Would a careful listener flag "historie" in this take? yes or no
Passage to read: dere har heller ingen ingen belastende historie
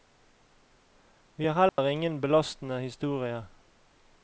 no